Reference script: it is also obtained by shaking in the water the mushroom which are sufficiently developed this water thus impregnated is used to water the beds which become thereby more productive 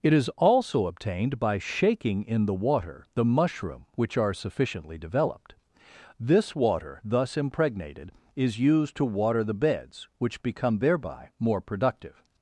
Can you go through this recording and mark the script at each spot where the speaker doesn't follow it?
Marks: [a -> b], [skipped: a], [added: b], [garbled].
it is also obtained by shaking in the water the mushroom which are sufficiently developed this water thus impregnated is used to water the beds which become thereby more productive